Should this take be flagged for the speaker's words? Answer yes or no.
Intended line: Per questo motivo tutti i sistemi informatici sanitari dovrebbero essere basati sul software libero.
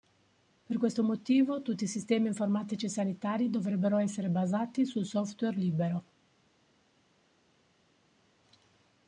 no